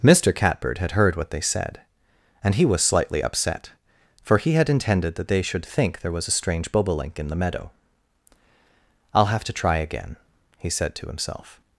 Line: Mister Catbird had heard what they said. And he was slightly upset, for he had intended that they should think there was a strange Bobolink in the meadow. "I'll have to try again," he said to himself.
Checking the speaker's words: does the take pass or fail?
pass